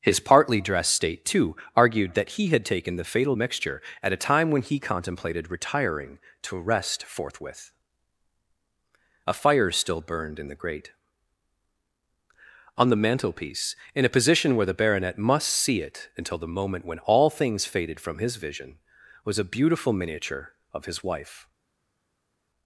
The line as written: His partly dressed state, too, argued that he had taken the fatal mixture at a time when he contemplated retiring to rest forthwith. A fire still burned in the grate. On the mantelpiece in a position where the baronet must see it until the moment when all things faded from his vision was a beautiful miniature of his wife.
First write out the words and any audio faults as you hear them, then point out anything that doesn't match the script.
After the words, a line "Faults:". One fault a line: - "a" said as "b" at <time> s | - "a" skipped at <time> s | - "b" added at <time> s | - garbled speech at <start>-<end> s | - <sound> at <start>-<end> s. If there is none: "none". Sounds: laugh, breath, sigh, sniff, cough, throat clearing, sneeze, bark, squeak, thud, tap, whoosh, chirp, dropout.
His partly dressed state, too, argued that he had taken the fatal mixture at a time when he contemplated retiring to rest forthwith. A fire still burned in the grate. On the mantelpiece in a position where the baronet must see it until the moment when all things faded from his vision was a beautiful miniature of his wife.
Faults:
none